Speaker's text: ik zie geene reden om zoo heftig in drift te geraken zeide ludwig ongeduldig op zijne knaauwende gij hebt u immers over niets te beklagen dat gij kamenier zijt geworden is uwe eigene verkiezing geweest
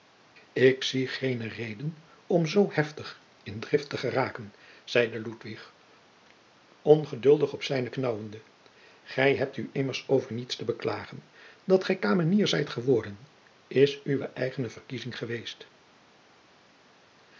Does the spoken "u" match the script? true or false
true